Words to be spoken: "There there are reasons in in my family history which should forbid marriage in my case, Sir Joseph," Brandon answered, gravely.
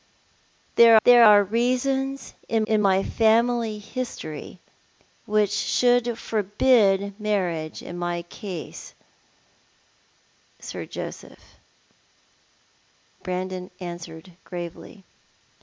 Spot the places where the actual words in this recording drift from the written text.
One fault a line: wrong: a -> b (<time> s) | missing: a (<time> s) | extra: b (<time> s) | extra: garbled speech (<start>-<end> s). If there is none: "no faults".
no faults